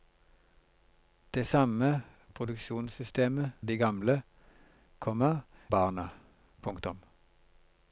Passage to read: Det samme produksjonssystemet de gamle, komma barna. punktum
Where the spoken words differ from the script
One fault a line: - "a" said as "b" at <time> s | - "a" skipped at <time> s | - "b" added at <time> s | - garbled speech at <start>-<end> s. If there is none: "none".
none